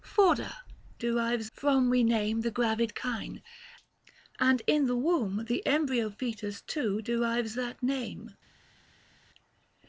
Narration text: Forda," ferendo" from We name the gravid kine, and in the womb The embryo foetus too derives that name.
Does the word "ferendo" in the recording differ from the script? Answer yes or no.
yes